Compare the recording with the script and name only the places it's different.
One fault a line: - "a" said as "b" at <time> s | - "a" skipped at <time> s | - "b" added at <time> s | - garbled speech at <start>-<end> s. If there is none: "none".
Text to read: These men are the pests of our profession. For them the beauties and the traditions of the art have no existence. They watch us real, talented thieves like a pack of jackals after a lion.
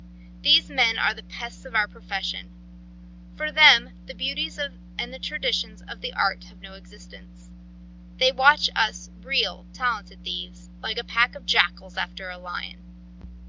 none